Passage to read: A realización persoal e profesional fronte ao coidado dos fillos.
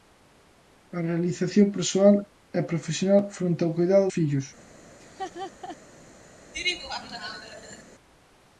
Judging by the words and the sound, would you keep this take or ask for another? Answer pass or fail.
fail